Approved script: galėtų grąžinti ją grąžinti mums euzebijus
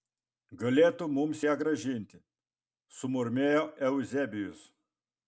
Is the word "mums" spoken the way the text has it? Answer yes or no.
no